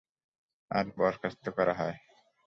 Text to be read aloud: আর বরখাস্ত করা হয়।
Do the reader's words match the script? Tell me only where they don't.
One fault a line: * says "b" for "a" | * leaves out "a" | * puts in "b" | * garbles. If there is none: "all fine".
all fine